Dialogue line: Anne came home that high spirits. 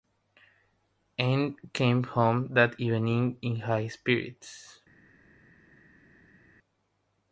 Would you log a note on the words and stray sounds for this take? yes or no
yes